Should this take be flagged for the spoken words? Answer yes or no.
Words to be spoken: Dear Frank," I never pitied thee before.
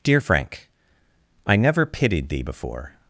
no